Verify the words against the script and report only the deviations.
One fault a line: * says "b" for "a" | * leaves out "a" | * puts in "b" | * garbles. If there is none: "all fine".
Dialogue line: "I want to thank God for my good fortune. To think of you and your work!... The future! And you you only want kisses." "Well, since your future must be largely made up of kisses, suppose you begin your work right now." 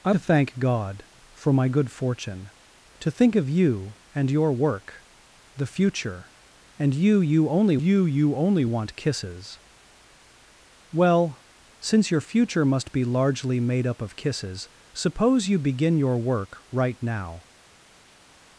* leaves out "want"
* puts in "you you only"